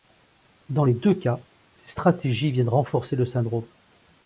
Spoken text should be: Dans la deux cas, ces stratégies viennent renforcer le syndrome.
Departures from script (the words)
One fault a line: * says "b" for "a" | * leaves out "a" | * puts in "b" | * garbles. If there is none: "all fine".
* says "les" for "la"